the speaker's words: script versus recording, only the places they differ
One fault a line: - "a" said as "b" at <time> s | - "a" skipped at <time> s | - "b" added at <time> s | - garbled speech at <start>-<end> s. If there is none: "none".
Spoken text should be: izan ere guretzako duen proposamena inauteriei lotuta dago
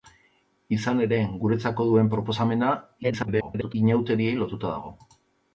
- garbled speech at 3.0-3.7 s